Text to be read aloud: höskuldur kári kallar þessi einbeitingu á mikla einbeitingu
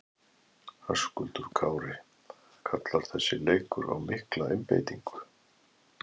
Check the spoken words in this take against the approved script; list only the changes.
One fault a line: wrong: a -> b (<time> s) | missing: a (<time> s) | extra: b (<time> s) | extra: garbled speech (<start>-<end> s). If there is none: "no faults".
wrong: einbeitingu -> leikur (3.5 s)